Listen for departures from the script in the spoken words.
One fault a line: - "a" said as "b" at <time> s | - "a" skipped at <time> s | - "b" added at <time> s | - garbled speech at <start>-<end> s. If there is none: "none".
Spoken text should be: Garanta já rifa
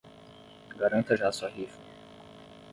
- "sua" added at 1.3 s